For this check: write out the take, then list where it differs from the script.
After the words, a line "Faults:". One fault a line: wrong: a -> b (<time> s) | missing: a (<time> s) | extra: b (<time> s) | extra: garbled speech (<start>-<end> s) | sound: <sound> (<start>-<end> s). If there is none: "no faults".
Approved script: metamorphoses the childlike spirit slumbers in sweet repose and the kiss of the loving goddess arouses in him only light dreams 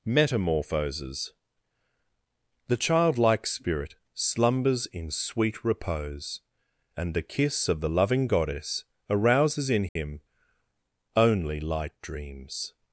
metamorphoses the childlike spirit slumbers in sweet repose and the kiss of the loving goddess arouses in him only light dreams
Faults:
sound: dropout (9.9-10.0 s)